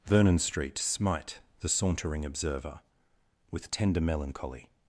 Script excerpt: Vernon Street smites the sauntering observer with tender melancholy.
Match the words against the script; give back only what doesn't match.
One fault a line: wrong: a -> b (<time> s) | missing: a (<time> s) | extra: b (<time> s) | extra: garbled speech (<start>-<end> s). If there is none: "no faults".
wrong: smites -> smite (0.8 s)